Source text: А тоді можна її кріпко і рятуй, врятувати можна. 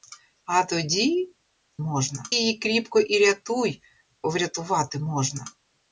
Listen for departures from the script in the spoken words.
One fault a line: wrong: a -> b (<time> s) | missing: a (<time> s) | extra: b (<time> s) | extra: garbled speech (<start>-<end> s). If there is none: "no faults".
no faults